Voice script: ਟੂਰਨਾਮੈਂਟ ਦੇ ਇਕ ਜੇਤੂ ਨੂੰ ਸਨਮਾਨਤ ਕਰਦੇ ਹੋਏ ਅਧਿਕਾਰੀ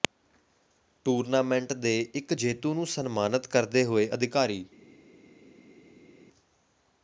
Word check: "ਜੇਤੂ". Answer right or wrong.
right